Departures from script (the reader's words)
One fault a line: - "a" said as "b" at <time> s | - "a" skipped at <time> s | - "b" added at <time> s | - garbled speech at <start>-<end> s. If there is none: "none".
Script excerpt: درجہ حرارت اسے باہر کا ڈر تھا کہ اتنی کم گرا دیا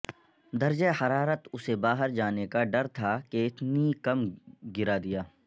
- "جانے" added at 2.1 s